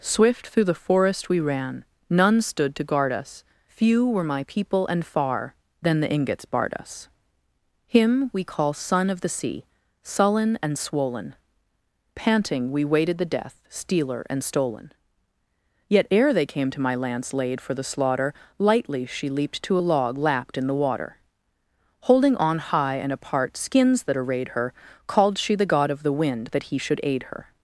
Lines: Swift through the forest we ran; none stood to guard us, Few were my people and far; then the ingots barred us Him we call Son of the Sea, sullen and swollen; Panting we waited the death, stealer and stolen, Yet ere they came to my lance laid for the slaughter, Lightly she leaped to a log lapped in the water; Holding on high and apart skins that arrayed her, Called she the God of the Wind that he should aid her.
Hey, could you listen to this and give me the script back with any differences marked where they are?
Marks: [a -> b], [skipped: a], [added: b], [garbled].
Swift through the forest we ran; none stood to guard us, Few were my people and far; then the ingots barred us Him we call Son of the Sea, sullen and swollen; Panting we waited the death, stealer and stolen, Yet ere they came to my lance laid for the slaughter, Lightly she leaped to a log lapped in the water; Holding on high and apart skins that arrayed her, Called she the God of the Wind that he should aid her.